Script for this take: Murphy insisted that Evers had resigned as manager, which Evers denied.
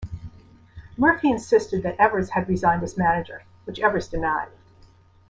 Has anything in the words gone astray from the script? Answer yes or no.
no